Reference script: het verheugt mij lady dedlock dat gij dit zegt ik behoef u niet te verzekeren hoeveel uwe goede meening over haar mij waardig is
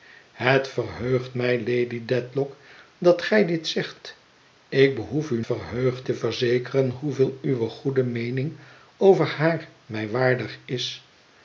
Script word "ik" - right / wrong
right